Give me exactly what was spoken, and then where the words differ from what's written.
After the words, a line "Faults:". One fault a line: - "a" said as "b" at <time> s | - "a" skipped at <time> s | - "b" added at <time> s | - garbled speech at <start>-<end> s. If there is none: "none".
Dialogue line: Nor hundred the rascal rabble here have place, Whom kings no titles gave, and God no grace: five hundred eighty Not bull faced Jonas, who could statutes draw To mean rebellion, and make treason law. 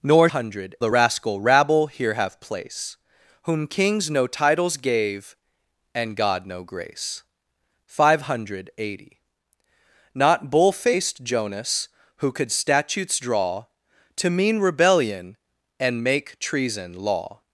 Nor hundred the rascal rabble here have place, Whom kings no titles gave, and God no grace: five hundred eighty Not bull faced Jonas, who could statutes draw To mean rebellion, and make treason law.
Faults:
none